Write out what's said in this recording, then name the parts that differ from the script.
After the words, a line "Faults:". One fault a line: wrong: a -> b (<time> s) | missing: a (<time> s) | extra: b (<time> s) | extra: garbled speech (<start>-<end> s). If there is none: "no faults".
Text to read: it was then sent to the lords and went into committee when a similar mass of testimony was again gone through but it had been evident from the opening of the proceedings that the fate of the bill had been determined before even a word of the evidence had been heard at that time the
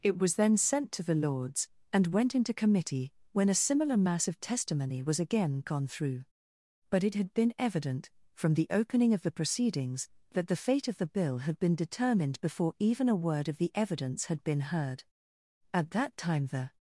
it was then sent to the lords and went into committee when a similar mass of testimony was again gone through but it had been evident from the opening of the proceedings that the fate of the bill had been determined before even a word of the evidence had been heard at that time the
Faults:
no faults